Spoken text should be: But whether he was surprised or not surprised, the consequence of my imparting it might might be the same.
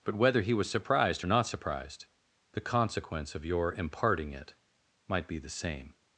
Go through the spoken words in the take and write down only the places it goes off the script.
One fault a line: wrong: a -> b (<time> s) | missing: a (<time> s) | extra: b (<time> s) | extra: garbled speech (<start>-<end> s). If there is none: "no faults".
wrong: my -> your (3.4 s)
missing: might (5.3 s)